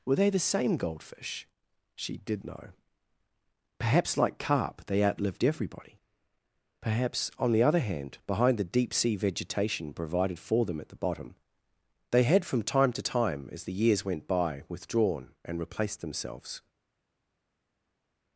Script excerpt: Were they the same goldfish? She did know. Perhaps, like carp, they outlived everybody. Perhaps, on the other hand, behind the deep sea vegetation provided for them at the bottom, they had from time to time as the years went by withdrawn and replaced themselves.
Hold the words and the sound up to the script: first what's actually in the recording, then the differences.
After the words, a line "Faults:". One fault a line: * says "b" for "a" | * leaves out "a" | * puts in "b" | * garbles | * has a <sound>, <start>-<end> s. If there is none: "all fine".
Were they the same goldfish? She did know. Perhaps, like carp, they outlived everybody. Perhaps, on the other hand, behind the deep sea vegetation provided for them at the bottom, they had from time to time as the years went by withdrawn and replaced themselves.
Faults:
all fine